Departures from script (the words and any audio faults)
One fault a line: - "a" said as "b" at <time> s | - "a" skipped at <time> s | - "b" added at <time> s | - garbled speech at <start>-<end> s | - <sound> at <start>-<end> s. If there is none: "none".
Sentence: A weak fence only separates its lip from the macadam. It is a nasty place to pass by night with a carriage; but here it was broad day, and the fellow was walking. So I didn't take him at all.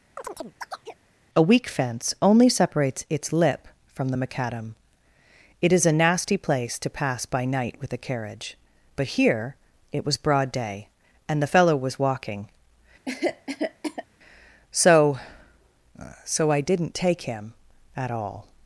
- chirp at 0.2-1.0 s
- cough at 13.1-14.1 s
- "So" added at 16.2 s